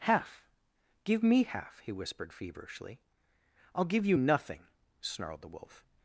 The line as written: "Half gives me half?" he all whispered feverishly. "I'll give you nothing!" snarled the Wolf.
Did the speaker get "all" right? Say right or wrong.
wrong